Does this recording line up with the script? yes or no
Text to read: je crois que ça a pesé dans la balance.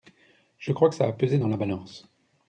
yes